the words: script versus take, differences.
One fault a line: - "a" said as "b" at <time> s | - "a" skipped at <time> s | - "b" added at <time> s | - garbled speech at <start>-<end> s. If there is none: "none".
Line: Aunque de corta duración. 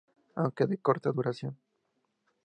none